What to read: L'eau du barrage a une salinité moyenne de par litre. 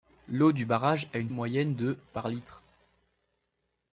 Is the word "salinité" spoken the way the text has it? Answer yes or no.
no